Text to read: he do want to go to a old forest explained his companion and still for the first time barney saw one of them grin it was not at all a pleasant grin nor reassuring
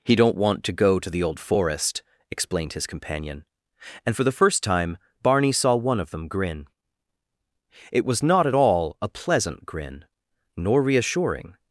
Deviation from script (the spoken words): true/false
true